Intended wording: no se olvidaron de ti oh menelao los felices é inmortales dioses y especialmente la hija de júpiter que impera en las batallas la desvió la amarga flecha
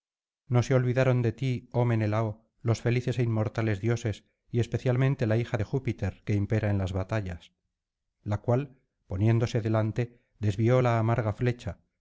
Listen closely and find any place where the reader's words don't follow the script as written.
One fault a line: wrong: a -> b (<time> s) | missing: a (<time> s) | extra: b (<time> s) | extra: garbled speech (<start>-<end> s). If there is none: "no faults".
extra: cual poniéndose delante (8.4 s)